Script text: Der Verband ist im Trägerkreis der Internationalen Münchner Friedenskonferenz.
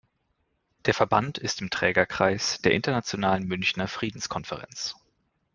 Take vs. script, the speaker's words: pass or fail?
pass